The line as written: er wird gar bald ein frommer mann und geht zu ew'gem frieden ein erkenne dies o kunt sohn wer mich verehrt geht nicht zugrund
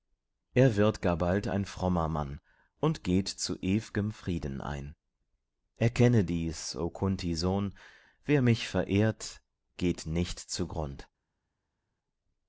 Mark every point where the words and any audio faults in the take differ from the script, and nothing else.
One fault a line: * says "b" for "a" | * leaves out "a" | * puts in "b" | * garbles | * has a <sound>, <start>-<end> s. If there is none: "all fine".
all fine